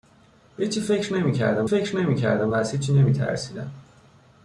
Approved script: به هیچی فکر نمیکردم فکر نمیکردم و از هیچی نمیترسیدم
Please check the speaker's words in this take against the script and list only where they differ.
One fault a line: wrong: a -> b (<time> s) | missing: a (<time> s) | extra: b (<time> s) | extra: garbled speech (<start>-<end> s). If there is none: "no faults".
no faults